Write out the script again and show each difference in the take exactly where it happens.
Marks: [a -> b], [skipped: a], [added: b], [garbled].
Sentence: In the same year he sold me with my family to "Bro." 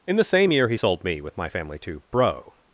In the same year he sold me with my family to "Bro."